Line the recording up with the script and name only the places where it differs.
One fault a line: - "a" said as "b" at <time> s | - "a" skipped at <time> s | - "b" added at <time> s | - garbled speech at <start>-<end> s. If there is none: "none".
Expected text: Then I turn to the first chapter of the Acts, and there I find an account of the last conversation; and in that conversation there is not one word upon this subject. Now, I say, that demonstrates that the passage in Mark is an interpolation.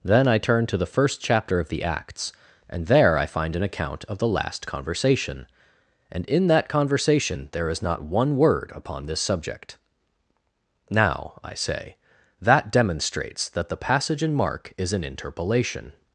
none